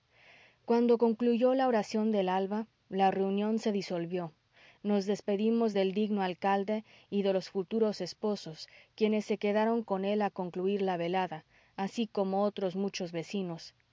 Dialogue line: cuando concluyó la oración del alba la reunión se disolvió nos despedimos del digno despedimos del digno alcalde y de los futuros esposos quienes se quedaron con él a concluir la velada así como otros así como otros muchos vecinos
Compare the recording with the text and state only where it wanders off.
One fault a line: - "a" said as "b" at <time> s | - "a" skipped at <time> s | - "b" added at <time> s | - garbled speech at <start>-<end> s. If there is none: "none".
- "despedimos del digno" skipped at 6.2 s
- "así como otros" skipped at 12.8 s